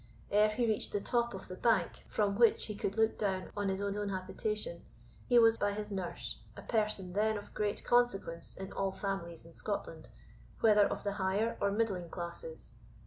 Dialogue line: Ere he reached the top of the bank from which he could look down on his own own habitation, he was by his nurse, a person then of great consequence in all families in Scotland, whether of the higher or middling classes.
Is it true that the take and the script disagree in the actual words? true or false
false